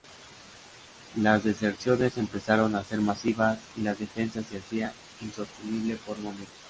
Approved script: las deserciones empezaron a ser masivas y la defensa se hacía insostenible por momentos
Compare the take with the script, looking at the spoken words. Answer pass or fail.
pass